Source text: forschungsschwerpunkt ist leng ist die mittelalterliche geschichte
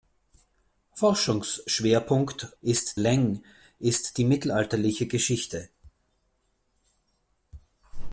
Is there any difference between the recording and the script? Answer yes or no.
no